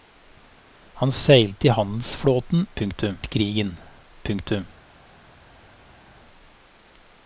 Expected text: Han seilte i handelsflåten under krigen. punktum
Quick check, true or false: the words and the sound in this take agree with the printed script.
false